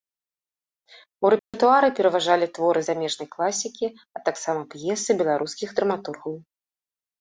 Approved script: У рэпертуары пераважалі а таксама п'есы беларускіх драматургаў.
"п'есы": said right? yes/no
yes